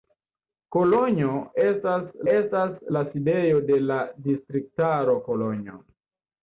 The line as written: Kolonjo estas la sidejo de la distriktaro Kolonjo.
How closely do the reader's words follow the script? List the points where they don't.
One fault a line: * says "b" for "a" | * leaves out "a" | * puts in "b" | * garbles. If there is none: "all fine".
* puts in "estas"